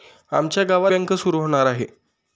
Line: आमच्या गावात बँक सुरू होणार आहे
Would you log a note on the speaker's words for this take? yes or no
no